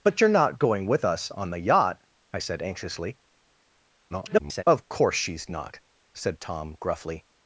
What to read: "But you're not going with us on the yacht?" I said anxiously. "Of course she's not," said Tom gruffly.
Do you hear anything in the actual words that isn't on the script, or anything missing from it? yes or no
yes